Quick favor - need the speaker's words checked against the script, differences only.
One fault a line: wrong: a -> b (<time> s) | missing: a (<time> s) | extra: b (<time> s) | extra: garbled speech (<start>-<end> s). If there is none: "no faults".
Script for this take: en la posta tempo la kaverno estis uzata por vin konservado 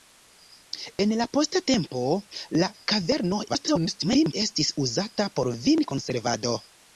extra: garbled speech (3.5-4.3 s)